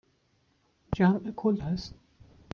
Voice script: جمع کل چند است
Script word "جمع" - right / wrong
right